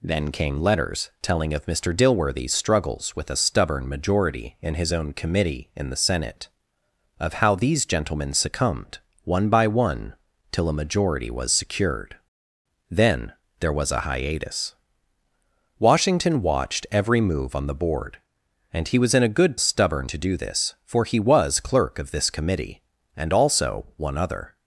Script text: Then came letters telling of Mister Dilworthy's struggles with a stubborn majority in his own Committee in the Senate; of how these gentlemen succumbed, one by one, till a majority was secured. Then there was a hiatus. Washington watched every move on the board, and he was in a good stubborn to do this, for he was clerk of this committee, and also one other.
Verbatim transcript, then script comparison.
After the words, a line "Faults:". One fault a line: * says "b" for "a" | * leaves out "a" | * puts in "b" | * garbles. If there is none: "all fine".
Then came letters telling of Mister Dilworthy's struggles with a stubborn majority in his own Committee in the Senate; of how these gentlemen succumbed, one by one, till a majority was secured. Then there was a hiatus. Washington watched every move on the board, and he was in a good stubborn to do this, for he was clerk of this committee, and also one other.
Faults:
all fine